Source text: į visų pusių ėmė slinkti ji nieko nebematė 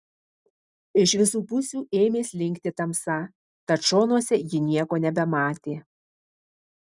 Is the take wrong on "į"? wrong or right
wrong